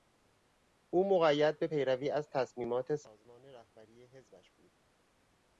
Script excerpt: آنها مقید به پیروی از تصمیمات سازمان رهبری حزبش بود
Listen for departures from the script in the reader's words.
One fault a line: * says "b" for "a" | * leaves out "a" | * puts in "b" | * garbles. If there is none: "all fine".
* says "او" for "آنها"